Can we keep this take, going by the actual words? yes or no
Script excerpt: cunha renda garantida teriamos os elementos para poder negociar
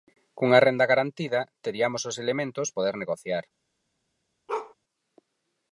no